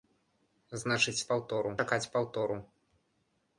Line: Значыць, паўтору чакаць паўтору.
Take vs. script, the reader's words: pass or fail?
pass